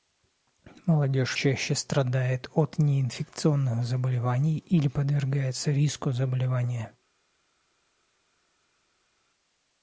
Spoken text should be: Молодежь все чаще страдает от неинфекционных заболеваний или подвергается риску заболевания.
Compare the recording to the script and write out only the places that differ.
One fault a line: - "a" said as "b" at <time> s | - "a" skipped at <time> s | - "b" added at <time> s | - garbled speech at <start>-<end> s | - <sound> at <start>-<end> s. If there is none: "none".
- "все" skipped at 1.4 s